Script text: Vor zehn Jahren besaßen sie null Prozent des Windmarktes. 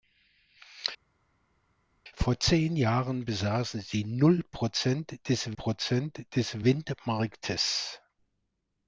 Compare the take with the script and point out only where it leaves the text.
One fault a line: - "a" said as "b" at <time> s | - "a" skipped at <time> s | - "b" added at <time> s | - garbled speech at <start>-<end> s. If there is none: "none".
- "Prozent des" added at 5.5 s